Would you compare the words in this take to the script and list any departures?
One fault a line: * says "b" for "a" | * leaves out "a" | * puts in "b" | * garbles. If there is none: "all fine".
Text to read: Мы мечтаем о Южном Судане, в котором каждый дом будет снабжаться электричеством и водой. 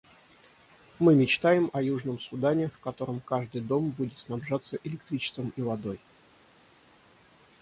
all fine